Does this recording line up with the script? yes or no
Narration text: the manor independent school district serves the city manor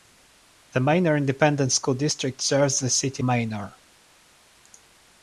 yes